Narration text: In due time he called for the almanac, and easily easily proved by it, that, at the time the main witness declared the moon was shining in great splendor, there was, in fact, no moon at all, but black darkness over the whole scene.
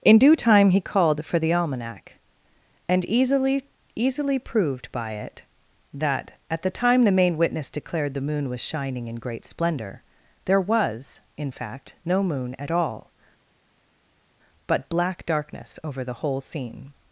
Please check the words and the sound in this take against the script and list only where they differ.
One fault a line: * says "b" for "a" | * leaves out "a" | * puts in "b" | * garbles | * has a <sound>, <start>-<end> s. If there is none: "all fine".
all fine